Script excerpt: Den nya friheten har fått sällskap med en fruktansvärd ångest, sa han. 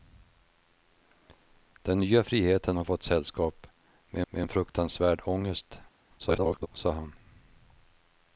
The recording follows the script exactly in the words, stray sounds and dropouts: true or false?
false